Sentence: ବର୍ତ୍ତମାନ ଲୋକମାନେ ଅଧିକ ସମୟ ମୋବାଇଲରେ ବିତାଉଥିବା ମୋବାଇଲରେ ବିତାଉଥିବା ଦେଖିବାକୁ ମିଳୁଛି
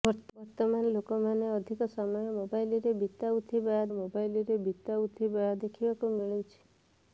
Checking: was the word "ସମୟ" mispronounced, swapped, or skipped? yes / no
no